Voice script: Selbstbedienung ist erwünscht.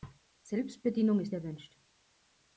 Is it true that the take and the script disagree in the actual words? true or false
false